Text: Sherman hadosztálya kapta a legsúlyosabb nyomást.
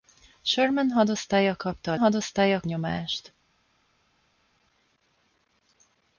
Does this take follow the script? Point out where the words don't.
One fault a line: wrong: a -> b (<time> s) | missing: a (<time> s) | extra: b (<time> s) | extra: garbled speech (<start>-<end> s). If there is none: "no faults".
wrong: legsúlyosabb -> hadosztálya (1.9 s)